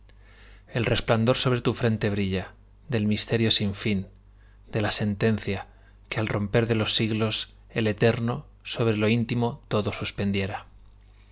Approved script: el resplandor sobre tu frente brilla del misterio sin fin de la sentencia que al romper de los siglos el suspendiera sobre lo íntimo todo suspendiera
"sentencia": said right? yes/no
yes